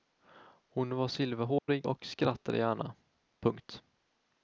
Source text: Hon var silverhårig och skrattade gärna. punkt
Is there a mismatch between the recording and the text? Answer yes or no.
no